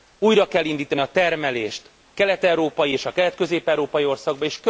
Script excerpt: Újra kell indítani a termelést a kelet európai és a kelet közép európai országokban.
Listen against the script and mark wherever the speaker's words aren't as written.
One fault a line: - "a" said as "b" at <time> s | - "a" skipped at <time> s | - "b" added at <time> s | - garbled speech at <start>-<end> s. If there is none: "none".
- "a" skipped at 1.9 s